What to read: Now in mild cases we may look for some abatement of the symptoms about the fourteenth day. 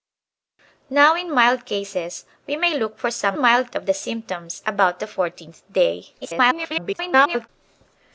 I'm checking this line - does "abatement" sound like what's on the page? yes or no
no